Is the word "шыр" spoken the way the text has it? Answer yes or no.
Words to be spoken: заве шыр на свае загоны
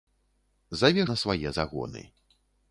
no